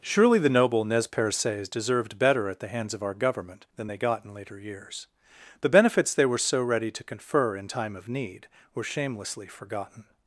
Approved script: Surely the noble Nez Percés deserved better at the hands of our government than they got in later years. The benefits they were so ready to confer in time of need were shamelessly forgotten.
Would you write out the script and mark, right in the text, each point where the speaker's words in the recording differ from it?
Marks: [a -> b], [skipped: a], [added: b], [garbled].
Surely the noble Nez Percés deserved better at the hands of our government than they got in later years. The benefits they were so ready to confer in time of need were shamelessly forgotten.